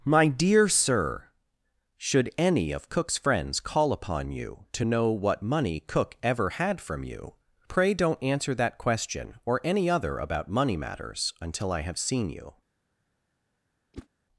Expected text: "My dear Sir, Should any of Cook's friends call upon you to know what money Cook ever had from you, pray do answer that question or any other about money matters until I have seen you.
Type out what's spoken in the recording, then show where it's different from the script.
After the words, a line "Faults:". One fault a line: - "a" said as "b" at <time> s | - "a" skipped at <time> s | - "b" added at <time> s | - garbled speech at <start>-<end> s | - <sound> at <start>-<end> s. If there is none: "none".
"My dear Sir, Should any of Cook's friends call upon you to know what money Cook ever had from you, pray don't answer that question or any other about money matters until I have seen you.
Faults:
- "do" said as "don't" at 7.9 s
- whoosh at 13.9-14.1 s